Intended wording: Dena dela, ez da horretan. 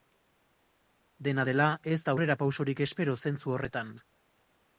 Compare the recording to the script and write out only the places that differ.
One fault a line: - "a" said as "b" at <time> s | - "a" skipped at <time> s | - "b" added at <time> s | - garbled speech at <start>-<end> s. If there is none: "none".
- "aurrerapausorik espero zentzu" added at 2.1 s